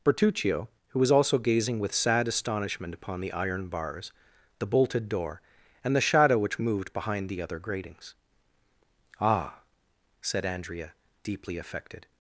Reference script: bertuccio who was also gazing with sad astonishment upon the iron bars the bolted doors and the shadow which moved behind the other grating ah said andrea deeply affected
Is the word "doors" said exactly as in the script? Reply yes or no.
no